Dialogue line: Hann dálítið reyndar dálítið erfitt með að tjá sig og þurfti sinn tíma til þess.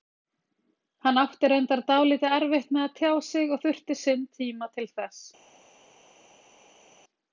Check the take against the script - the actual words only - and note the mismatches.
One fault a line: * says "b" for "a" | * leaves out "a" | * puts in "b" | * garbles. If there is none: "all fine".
* says "átti" for "dálítið"